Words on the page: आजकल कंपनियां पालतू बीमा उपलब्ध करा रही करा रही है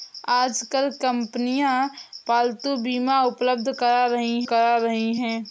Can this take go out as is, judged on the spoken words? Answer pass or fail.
pass